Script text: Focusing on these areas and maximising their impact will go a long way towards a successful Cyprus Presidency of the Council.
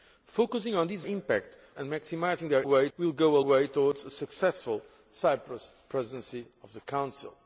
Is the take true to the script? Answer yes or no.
no